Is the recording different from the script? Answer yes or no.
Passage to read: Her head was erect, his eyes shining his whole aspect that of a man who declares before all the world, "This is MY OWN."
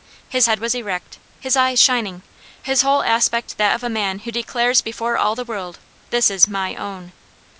yes